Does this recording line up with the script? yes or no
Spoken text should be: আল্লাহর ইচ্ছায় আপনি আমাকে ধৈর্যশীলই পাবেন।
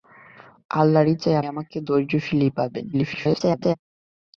no